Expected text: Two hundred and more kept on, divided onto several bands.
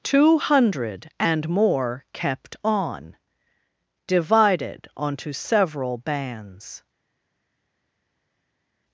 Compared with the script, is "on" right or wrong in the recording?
right